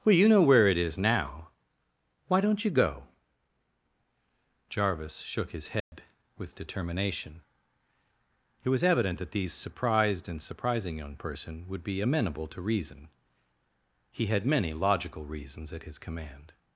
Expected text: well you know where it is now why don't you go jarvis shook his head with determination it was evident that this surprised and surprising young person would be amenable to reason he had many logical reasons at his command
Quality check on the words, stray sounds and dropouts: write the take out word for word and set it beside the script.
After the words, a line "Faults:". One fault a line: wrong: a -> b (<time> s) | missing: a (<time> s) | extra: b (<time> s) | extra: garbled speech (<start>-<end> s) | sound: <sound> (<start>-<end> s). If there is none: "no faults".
well you know where it is now why don't you go jarvis shook his head with determination it was evident that these surprised and surprising young person would be amenable to reason he had many logical reasons at his command
Faults:
sound: dropout (5.8-5.9 s)
wrong: this -> these (9.3 s)